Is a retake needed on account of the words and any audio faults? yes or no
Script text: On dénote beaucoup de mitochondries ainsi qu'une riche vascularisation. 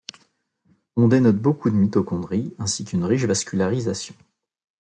no